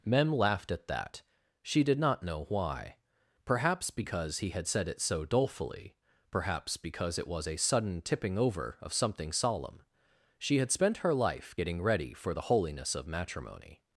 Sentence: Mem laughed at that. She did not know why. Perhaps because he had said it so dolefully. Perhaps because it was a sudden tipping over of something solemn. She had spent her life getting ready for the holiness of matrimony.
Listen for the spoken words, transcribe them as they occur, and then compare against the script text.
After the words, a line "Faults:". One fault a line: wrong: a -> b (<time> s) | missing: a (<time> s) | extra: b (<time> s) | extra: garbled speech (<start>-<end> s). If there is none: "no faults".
Mem laughed at that. She did not know why. Perhaps because he had said it so dolefully. Perhaps because it was a sudden tipping over of something solemn. She had spent her life getting ready for the holiness of matrimony.
Faults:
no faults